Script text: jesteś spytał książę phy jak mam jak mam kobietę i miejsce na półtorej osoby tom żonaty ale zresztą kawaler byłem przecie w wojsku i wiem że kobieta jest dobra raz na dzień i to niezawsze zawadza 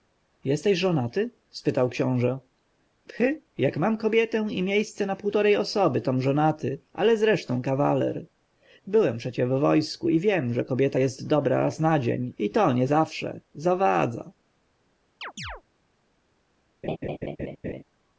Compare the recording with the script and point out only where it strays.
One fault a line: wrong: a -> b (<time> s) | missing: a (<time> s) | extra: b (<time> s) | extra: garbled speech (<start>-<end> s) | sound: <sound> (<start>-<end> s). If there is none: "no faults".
extra: żonaty (0.8 s)
missing: jak mam (4.0 s)
sound: chirp (15.2-15.6 s)
sound: laugh (16.8-17.8 s)